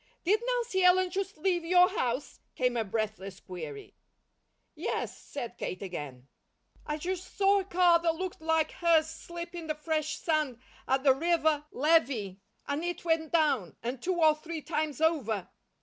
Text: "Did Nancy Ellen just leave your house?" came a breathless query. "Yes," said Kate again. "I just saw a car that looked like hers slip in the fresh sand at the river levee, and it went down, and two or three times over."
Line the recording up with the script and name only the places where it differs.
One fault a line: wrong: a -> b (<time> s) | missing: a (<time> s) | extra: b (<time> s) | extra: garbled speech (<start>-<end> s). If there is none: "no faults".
no faults